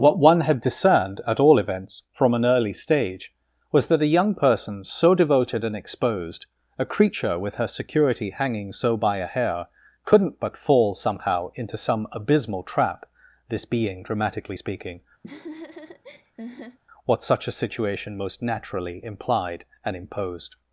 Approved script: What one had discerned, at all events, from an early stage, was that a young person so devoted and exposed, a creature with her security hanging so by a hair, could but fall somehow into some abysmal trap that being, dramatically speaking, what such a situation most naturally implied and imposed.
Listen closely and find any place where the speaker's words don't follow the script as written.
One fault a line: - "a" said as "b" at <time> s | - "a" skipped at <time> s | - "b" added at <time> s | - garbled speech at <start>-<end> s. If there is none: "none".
- "could" said as "couldn't" at 10.0 s
- "that" said as "this" at 13.5 s